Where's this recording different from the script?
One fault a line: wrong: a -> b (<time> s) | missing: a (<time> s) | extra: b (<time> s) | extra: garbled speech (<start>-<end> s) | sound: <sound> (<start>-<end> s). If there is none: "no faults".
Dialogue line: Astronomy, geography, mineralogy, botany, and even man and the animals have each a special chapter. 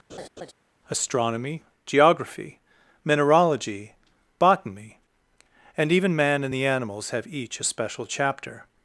sound: laugh (0.1-0.5 s)